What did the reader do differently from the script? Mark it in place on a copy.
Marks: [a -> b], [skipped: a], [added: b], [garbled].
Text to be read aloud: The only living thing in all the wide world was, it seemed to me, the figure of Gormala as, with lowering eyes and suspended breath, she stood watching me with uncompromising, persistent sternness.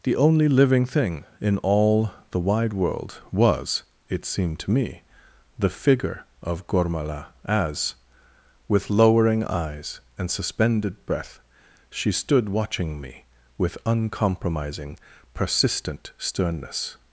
The only living thing in all the wide world was, it seemed to me, the figure of Gormala as, with lowering eyes and suspended breath, she stood watching me with uncompromising, persistent sternness.